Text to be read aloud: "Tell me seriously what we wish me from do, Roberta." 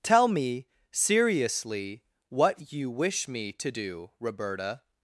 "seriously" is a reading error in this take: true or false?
false